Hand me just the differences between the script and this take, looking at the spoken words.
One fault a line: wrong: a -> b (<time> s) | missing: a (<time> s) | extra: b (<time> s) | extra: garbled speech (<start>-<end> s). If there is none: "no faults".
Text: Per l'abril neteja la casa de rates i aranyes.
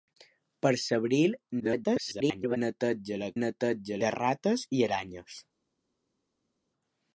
extra: garbled speech (1.6-2.6 s)
wrong: casa -> neteja (3.4 s)